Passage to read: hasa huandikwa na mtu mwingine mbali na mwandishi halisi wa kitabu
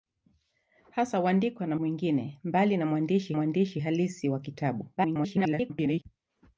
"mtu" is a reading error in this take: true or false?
true